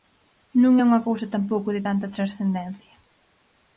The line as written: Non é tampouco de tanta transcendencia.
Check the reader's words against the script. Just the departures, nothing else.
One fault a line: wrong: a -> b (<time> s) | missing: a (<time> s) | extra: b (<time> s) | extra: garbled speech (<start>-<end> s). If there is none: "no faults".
extra: unha cousa (0.9 s)